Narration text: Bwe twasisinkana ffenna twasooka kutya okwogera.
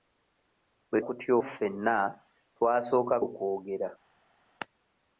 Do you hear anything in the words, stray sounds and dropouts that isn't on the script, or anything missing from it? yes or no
yes